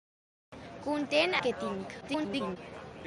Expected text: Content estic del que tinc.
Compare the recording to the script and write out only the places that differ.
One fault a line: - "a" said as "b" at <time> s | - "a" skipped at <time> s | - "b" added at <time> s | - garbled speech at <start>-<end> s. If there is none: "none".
- "estic del" skipped at 1.4 s
- garbled speech at 2.0-2.6 s